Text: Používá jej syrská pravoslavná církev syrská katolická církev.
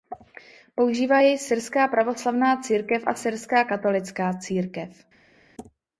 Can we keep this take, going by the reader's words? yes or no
no